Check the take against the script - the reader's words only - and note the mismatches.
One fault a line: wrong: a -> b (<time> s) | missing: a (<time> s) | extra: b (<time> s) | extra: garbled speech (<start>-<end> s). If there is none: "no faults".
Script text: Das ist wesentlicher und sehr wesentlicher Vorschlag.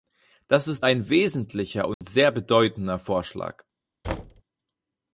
extra: ein (0.8 s)
wrong: wesentlicher -> bedeutender (2.3 s)